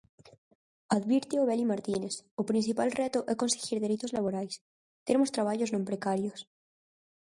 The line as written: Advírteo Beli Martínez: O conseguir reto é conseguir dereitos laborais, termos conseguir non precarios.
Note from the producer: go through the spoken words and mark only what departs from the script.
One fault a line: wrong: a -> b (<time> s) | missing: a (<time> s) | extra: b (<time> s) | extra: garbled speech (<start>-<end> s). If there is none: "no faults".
wrong: conseguir -> principal (2.5 s)
wrong: conseguir -> traballos (5.3 s)